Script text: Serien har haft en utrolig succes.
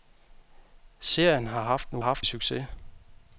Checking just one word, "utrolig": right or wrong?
wrong